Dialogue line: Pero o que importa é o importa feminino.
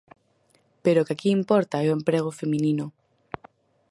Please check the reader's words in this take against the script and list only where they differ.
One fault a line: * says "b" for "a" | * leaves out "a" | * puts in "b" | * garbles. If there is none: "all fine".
* puts in "aquí"
* says "emprego" for "importa"